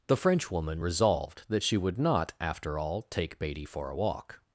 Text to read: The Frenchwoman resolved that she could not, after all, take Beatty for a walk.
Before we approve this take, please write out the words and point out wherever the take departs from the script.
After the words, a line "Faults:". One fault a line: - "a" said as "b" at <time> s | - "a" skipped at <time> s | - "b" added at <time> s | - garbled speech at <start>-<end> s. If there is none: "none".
The Frenchwoman resolved that she would not, after all, take Beatty for a walk.
Faults:
- "could" said as "would" at 1.8 s